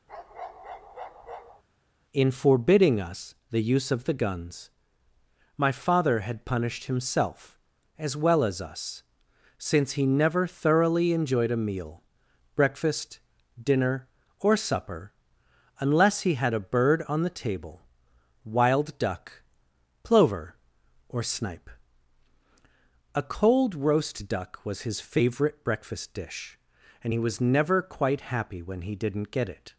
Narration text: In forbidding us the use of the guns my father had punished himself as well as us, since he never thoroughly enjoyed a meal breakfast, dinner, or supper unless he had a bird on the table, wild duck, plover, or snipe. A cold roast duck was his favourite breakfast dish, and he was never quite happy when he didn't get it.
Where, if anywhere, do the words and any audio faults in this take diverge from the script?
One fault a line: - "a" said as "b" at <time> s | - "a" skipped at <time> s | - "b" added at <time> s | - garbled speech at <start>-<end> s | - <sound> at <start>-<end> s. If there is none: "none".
- bark at 0.1-1.6 s